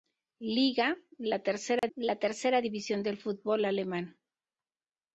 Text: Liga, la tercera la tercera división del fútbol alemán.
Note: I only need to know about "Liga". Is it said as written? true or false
true